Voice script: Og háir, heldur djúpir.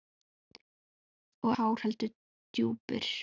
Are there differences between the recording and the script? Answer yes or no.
no